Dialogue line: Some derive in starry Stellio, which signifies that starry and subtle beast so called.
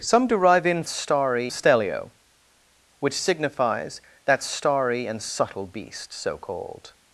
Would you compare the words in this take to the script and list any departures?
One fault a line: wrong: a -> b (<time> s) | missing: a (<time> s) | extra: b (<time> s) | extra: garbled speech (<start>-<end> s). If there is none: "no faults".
no faults